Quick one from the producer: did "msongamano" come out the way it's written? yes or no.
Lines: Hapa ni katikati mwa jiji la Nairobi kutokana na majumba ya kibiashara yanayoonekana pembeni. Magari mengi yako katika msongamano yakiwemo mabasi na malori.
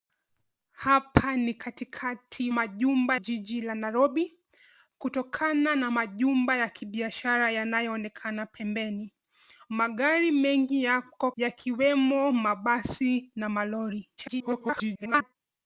no